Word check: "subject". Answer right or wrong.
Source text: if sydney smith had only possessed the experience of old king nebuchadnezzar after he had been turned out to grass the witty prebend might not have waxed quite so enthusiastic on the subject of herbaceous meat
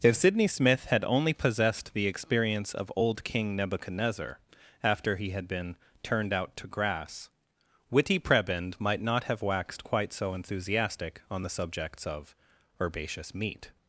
wrong